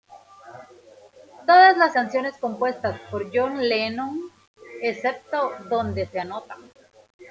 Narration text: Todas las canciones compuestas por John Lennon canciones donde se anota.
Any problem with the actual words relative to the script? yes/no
yes